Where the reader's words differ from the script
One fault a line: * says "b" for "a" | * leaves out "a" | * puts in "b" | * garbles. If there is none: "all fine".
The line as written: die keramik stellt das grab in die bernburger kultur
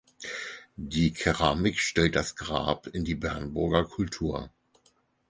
all fine